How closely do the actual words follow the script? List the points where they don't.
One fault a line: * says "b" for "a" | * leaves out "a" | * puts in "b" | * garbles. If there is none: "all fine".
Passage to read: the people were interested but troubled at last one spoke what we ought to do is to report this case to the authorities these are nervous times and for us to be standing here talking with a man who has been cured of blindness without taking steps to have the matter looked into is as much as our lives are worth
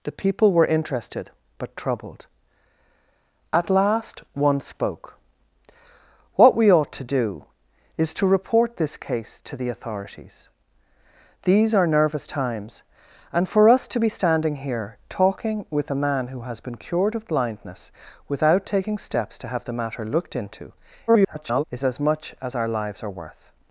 * garbles